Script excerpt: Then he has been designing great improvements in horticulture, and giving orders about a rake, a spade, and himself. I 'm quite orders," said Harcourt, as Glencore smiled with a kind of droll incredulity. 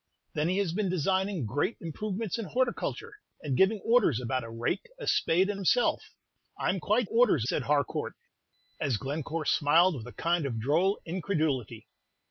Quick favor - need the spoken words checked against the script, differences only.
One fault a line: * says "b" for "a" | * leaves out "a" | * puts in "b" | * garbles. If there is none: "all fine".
all fine